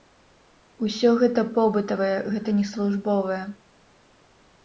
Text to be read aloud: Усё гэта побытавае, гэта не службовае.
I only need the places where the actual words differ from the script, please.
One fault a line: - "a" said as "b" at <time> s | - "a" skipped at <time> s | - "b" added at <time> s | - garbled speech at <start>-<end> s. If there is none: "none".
none